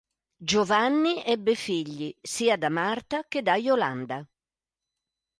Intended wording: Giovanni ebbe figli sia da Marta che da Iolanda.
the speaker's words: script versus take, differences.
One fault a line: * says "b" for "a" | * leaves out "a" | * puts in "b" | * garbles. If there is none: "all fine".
all fine